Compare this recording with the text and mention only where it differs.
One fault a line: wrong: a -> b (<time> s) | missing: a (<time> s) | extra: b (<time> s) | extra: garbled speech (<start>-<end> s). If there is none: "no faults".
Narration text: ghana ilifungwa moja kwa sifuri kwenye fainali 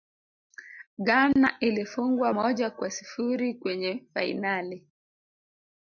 no faults